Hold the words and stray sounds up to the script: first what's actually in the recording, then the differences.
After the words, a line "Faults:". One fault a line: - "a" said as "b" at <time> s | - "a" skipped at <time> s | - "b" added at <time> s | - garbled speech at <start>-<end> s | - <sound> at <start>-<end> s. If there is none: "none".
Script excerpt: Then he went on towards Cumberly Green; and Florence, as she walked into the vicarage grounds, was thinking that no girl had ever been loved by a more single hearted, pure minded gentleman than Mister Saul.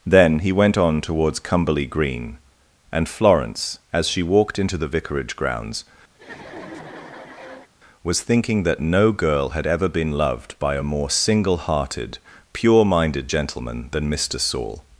Then he went on towards Cumberly Green; and Florence, as she walked into the vicarage grounds, was thinking that no girl had ever been loved by a more single hearted, pure minded gentleman than Mister Saul.
Faults:
- laugh at 6.1-7.7 s